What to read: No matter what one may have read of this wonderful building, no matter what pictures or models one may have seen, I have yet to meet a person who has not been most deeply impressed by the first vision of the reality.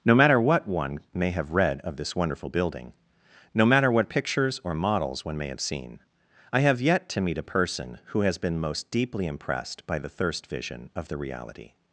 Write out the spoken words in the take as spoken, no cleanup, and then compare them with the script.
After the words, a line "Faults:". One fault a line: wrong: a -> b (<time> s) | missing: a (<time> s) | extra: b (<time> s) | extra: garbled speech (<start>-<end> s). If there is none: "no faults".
No matter what one may have read of this wonderful building, no matter what pictures or models one may have seen, I have yet to meet a person who has been most deeply impressed by the thirst vision of the reality.
Faults:
missing: not (8.4 s)
wrong: first -> thirst (10.1 s)